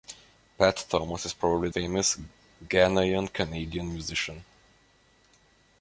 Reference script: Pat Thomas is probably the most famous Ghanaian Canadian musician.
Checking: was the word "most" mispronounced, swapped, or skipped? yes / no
yes